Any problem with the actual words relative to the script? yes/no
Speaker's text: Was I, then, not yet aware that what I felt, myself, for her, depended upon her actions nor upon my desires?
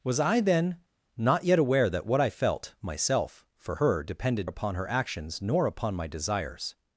no